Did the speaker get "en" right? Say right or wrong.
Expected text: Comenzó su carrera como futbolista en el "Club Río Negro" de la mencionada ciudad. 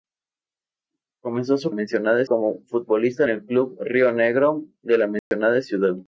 wrong